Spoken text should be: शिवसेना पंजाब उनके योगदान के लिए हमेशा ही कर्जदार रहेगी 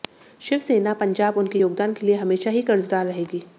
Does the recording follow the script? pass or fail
pass